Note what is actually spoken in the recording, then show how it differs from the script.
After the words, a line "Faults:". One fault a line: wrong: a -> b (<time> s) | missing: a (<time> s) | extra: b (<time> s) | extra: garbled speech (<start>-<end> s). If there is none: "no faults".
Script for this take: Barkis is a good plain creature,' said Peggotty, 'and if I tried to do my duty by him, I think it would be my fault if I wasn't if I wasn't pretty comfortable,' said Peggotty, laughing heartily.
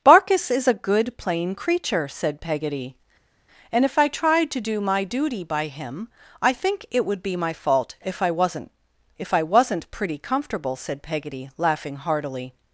Barkis is a good plain creature,' said Peggotty, 'and if I tried to do my duty by him, I think it would be my fault if I wasn't if I wasn't pretty comfortable,' said Peggotty, laughing heartily.
Faults:
no faults